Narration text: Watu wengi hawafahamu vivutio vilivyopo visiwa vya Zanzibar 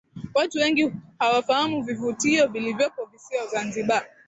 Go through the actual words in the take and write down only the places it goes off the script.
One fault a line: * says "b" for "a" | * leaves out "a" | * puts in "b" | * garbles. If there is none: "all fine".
* leaves out "vya"